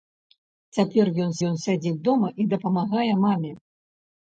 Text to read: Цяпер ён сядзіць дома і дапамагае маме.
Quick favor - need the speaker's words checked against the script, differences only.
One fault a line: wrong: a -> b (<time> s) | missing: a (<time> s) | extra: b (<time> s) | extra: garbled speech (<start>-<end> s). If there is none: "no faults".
extra: ён (1.5 s)